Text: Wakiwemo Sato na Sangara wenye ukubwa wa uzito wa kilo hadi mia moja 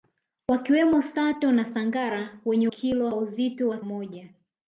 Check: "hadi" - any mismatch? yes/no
yes